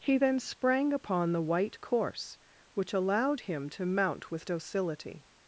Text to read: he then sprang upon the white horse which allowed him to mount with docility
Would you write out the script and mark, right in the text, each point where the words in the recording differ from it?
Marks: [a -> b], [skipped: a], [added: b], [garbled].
he then sprang upon the white [horse -> course] which allowed him to mount with docility